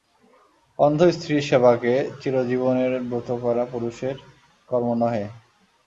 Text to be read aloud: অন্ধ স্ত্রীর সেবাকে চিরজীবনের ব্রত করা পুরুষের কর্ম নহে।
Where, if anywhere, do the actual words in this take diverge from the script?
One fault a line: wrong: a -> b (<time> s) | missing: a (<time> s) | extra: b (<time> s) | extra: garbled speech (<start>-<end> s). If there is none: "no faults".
no faults